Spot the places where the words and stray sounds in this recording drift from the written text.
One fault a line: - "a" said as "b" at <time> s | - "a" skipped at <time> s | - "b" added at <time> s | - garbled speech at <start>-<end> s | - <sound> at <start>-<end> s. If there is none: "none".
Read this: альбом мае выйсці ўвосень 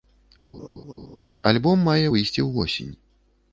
- laugh at 0.5-1.2 s